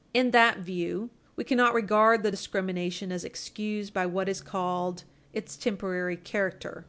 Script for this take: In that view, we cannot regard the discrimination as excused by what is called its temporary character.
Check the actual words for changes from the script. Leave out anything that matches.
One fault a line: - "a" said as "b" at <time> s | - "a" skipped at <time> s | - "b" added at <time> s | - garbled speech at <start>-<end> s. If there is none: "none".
none